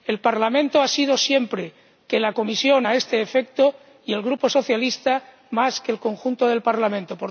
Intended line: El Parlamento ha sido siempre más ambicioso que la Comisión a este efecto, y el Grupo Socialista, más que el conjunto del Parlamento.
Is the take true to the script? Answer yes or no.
no